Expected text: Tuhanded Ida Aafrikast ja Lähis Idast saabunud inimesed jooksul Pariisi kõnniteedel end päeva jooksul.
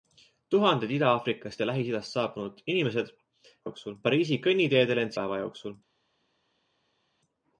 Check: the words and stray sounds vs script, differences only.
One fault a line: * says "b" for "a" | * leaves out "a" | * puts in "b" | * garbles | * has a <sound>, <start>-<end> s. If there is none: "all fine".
all fine